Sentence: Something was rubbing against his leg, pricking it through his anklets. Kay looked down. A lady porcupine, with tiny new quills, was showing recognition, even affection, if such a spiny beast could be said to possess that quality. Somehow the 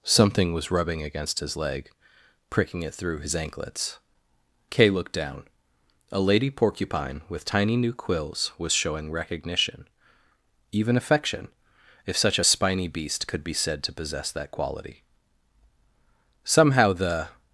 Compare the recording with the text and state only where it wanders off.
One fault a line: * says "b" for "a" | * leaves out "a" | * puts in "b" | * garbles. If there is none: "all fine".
all fine